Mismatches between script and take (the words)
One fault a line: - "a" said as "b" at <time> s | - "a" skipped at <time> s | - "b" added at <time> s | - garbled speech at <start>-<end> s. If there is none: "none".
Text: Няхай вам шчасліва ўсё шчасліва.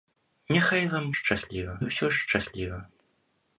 none